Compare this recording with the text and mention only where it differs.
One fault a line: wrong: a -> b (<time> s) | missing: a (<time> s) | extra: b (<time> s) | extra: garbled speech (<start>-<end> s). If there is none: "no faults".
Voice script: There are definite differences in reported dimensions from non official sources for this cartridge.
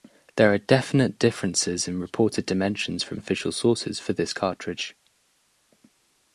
missing: non (3.2 s)